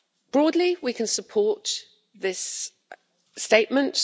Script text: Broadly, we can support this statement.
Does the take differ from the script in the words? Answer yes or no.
no